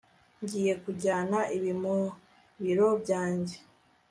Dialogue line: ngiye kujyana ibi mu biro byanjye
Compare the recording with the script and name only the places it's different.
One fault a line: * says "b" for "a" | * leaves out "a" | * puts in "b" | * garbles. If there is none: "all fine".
all fine